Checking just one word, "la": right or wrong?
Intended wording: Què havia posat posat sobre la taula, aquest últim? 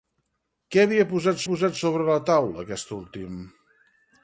right